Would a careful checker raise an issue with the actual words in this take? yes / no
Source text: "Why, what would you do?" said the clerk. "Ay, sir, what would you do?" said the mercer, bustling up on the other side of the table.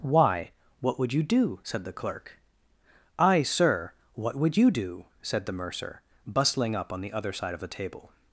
no